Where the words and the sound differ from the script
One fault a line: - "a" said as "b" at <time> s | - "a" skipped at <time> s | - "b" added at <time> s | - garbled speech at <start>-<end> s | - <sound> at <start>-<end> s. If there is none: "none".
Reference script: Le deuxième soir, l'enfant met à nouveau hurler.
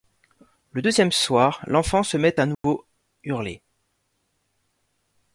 - "se" added at 2.0 s
- dropout at 2.5-2.6 s